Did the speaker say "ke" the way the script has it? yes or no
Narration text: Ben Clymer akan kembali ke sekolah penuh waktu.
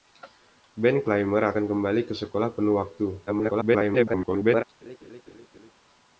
yes